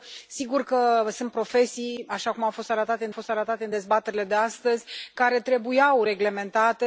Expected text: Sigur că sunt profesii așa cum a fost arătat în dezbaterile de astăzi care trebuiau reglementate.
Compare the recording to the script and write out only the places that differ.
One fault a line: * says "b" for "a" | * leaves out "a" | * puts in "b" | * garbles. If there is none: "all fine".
* puts in "fost arătat în"